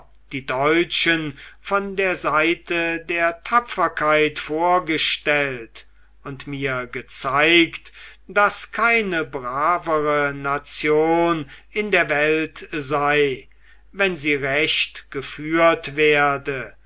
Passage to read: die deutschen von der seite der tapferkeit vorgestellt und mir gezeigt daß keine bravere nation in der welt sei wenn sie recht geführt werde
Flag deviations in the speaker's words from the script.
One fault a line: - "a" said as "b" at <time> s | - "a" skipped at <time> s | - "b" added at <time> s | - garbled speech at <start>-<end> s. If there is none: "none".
none